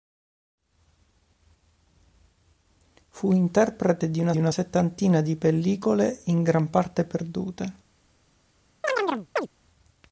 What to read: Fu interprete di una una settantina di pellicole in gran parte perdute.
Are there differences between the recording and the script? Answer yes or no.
no